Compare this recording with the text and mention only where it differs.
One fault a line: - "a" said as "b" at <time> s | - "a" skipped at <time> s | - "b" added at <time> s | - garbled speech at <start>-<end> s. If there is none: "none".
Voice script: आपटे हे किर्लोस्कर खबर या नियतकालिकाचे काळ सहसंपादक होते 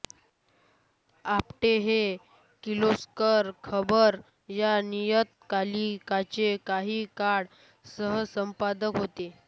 - "काही" added at 6.7 s